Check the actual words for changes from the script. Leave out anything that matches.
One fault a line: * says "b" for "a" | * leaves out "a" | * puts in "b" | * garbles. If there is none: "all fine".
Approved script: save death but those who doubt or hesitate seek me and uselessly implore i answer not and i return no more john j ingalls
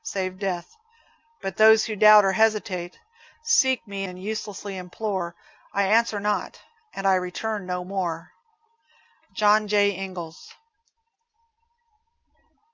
all fine